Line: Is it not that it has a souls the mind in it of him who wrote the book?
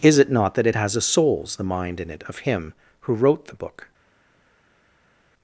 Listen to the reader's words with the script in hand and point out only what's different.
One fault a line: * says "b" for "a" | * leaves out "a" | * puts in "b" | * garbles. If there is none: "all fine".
all fine